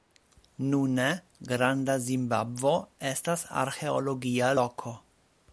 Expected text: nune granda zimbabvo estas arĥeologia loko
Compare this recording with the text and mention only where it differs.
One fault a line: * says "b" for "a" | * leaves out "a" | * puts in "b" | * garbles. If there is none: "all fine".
all fine